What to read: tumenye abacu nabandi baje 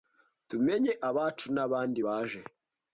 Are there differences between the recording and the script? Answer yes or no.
no